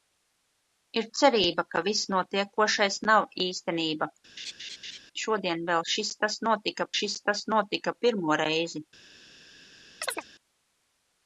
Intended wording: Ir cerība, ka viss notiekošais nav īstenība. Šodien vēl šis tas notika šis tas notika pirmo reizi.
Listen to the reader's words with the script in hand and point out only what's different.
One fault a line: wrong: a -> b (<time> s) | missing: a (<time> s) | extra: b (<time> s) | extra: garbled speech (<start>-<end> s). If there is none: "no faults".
no faults